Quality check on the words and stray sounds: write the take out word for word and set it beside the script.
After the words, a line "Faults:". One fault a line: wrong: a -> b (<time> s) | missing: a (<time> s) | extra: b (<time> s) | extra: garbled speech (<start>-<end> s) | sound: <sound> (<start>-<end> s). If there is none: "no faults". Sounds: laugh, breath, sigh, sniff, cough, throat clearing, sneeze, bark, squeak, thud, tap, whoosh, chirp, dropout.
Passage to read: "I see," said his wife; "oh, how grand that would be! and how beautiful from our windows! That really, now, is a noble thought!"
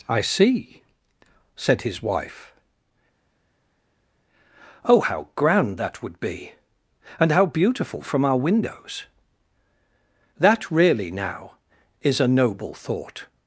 "I see," said his wife; "oh, how grand that would be! and how beautiful from our windows! That really, now, is a noble thought!"
Faults:
no faults